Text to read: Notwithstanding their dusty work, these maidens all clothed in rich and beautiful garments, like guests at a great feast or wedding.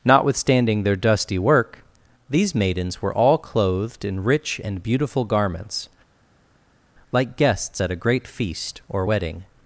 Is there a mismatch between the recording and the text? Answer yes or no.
yes